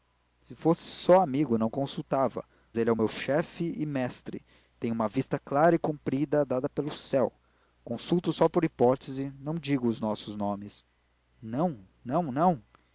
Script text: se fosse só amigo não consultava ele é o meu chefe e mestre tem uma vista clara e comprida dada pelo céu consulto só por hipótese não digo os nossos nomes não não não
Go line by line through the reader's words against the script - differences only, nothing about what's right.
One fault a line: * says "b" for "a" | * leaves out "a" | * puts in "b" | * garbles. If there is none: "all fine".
all fine